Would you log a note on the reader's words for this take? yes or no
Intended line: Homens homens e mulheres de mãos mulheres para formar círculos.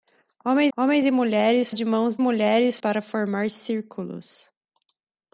no